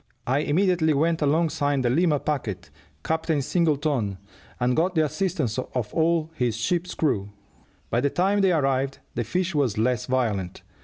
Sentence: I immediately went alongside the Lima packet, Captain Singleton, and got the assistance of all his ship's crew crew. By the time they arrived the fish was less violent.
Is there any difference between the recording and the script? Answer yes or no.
yes